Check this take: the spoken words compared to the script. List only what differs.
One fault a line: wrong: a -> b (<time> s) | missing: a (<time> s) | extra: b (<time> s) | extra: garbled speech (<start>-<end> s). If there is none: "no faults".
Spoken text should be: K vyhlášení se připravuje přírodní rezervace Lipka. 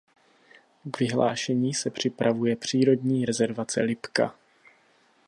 no faults